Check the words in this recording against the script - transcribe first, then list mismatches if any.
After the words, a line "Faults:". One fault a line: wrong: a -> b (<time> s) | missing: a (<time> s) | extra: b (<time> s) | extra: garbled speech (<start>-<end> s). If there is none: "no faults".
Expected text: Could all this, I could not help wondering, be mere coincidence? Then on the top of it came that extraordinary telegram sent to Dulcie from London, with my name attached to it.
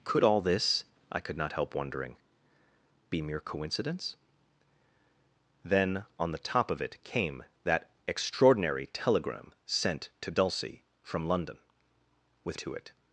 Could all this, I could not help wondering, be mere coincidence? Then on the top of it came that extraordinary telegram sent to Dulcie from London, with to it.
Faults:
missing: my name attached (12.6 s)